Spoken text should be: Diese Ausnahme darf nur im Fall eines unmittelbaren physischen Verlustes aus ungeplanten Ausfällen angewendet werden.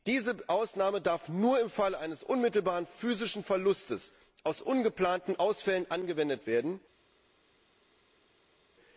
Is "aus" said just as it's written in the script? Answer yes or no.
yes